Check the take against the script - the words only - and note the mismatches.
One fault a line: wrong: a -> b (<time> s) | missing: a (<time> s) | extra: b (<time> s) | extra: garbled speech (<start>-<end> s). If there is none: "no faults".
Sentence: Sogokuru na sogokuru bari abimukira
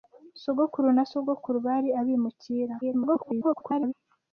extra: garbled speech (2.8-3.9 s)